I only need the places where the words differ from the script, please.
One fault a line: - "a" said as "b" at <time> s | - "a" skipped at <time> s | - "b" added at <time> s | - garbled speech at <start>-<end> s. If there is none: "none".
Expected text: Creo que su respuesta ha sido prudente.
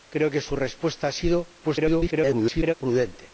- garbled speech at 1.6-2.7 s